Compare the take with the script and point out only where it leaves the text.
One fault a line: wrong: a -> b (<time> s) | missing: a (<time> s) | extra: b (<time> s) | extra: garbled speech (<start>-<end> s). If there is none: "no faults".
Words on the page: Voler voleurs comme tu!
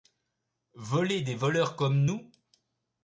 extra: des (1.2 s)
wrong: tu -> nous (2.0 s)